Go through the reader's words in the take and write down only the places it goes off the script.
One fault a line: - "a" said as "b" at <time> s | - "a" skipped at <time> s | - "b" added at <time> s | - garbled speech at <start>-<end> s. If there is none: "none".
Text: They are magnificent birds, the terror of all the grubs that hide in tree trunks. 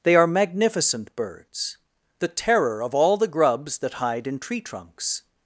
none